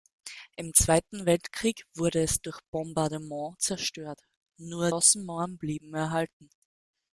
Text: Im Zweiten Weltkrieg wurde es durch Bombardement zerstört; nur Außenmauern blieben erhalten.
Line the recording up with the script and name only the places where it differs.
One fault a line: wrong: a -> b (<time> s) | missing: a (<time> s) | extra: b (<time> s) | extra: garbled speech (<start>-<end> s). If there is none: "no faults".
no faults